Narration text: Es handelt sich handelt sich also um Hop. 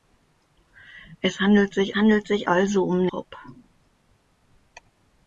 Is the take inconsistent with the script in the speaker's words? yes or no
no